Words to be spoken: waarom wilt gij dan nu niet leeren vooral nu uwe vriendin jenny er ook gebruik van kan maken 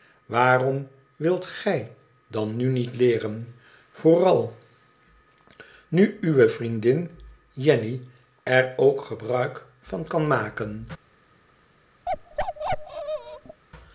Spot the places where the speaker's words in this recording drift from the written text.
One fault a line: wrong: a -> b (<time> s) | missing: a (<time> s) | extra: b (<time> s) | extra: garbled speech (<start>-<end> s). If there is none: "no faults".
no faults